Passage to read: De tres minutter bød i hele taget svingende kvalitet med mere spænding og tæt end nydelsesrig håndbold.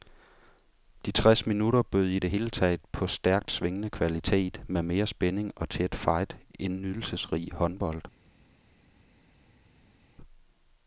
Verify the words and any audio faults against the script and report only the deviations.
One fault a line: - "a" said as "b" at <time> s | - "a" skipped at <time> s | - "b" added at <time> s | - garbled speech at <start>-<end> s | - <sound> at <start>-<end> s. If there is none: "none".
- "det" added at 2.2 s
- "på stærkt" added at 2.9 s
- "fight" added at 5.9 s